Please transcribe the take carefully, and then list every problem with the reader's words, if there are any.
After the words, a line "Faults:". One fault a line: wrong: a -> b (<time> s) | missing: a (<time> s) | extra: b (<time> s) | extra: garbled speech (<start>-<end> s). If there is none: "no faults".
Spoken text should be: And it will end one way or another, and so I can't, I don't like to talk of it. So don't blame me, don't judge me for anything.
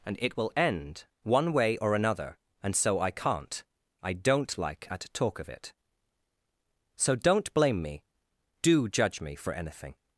And it will end one way or another, and so I can't, I don't like at talk of it. So don't blame me, do judge me for anything.
Faults:
wrong: to -> at (4.9 s)
wrong: don't -> do (8.6 s)